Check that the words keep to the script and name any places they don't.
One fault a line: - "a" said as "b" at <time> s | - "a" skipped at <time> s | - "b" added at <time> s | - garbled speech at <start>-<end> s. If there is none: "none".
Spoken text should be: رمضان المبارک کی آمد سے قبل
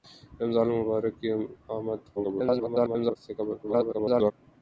- garbled speech at 2.2-3.2 s
- garbled speech at 3.6-4.3 s